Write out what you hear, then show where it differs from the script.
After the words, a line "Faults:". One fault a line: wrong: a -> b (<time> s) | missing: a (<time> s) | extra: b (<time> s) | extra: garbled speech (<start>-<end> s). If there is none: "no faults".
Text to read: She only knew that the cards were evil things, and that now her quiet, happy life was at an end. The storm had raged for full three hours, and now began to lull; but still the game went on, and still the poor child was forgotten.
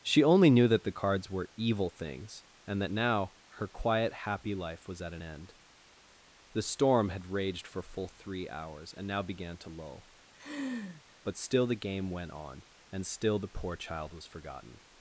She only knew that the cards were evil things, and that now her quiet, happy life was at an end. The storm had raged for full three hours, and now began to lull; but still the game went on, and still the poor child was forgotten.
Faults:
no faults